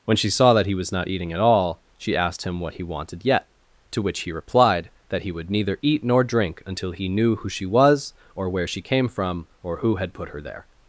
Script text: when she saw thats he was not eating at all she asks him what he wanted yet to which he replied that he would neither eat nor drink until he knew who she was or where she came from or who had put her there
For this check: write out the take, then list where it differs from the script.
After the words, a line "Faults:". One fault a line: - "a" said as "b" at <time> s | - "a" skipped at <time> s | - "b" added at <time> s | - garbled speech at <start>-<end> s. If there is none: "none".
when she saw that he was not eating at all she asked him what he wanted yet to which he replied that he would neither eat nor drink until he knew who she was or where she came from or who had put her there
Faults:
- "thats" said as "that" at 0.5 s
- "asks" said as "asked" at 2.2 s